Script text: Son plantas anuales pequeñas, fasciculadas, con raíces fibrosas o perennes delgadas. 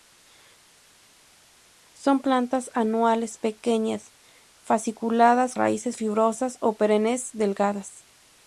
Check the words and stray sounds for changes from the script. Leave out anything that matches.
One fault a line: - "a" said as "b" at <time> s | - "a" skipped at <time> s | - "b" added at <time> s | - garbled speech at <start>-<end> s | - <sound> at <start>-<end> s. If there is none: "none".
- "con" skipped at 5.5 s